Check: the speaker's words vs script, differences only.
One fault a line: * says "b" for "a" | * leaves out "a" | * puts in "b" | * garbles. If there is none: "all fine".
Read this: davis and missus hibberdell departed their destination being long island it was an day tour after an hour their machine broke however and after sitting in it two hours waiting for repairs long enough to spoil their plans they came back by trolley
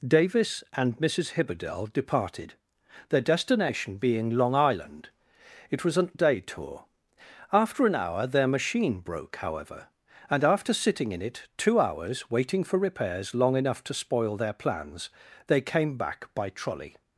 all fine